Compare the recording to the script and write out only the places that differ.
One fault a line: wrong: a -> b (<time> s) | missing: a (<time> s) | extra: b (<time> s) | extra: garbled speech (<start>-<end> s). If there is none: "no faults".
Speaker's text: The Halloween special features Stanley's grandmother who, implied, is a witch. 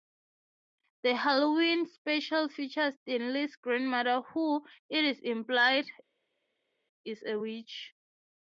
extra: it is (4.9 s)